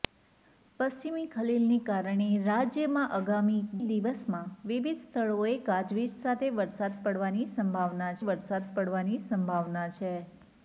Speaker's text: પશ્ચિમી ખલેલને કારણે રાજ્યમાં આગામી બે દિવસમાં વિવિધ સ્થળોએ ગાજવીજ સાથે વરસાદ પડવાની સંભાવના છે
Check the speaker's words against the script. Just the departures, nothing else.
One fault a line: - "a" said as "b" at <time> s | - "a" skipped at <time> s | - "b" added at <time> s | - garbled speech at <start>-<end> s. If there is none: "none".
- "બે" skipped at 3.6 s
- "વરસાદ પડવાની સંભાવના" added at 8.3 s